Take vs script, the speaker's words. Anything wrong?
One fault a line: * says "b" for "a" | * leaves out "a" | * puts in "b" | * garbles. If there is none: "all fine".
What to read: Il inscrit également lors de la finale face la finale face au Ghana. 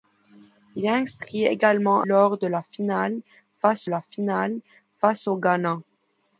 all fine